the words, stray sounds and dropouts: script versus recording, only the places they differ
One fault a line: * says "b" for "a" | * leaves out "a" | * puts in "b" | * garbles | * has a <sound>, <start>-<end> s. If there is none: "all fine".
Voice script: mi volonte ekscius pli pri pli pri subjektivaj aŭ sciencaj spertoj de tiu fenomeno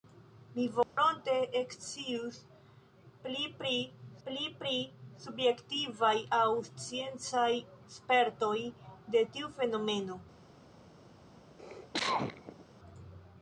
* has a dropout, 0.8-1.0 s
* has a cough, 11.6-12.6 s